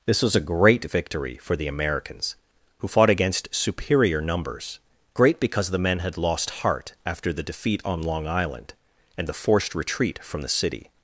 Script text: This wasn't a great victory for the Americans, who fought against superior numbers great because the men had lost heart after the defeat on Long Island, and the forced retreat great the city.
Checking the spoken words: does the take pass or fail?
fail